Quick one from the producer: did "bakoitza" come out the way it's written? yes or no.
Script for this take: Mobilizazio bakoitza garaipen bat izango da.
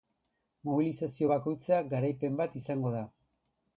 yes